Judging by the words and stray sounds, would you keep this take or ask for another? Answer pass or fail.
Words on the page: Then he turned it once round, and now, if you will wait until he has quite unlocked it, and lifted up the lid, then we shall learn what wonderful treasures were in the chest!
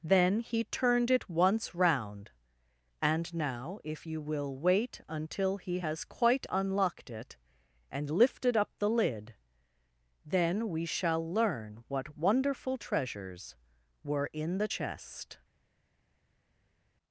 pass